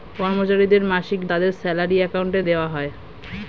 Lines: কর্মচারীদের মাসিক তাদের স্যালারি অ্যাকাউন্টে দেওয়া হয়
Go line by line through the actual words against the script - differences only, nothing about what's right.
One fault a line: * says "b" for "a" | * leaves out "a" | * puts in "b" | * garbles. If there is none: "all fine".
all fine